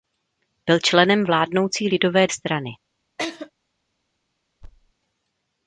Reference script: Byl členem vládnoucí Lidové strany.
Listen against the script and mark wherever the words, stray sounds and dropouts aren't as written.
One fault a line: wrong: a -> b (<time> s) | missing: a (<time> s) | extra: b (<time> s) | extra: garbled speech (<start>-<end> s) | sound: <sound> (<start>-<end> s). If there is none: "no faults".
sound: laugh (3.2-3.5 s)
sound: thud (4.6-4.9 s)